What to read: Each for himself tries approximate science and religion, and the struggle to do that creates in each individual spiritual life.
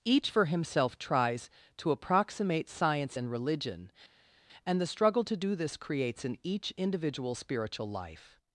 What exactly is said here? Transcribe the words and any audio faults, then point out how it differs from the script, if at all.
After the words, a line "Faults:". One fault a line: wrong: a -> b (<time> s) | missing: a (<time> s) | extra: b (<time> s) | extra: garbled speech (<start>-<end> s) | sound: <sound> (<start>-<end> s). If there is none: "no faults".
Each for himself tries to approximate science and religion, and the struggle to do this creates in each individual spiritual life.
Faults:
extra: to (1.8 s)
wrong: that -> this (5.5 s)